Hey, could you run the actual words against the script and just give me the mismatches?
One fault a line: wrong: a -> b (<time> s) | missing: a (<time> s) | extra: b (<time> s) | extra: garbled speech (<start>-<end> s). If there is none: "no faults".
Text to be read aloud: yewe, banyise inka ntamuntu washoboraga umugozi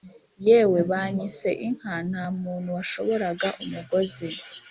no faults